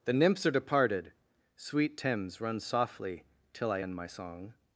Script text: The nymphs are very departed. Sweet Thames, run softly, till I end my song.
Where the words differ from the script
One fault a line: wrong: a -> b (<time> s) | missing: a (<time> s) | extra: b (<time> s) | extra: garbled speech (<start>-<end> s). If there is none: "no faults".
missing: very (0.5 s)